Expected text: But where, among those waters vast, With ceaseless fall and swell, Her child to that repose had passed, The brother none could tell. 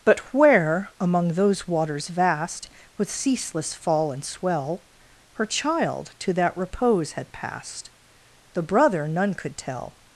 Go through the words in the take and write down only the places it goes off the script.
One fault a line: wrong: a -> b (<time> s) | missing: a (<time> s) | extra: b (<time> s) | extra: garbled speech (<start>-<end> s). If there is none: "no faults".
no faults